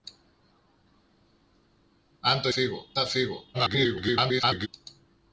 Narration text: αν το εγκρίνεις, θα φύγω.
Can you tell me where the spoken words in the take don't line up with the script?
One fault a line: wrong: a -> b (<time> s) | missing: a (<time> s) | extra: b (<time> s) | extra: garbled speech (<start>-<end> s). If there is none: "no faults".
wrong: εγκρίνεις -> φύγω (2.5 s)
extra: garbled speech (3.5-4.7 s)